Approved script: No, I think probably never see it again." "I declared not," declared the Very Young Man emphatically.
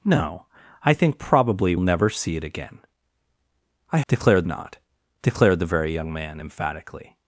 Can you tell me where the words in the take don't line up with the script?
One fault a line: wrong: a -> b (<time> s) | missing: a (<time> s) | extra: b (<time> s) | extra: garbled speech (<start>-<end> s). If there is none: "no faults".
no faults